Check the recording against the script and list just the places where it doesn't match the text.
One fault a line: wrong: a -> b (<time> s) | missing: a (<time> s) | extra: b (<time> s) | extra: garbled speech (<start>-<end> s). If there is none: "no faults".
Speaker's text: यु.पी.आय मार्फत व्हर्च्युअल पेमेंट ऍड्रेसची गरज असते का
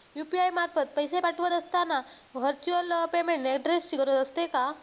extra: पैसे पाठवत असताना (0.9 s)